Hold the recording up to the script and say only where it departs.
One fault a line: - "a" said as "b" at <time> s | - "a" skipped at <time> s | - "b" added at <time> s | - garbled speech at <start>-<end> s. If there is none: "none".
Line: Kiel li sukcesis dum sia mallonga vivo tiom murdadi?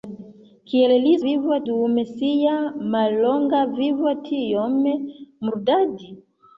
- "sukcesis" said as "vivo" at 1.3 s